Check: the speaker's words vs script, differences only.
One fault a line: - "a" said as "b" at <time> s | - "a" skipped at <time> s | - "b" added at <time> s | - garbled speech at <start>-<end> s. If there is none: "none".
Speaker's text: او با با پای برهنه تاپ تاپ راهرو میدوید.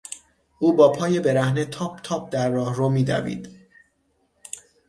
- "با" skipped at 0.9 s
- "در" added at 2.3 s